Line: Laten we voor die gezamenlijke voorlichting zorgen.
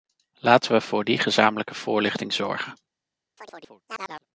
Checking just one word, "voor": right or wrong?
right